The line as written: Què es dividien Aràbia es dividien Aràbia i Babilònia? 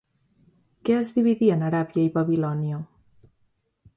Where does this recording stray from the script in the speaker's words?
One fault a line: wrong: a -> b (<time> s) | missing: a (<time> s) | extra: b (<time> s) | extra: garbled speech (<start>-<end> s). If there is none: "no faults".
missing: es dividien Aràbia (2.0 s)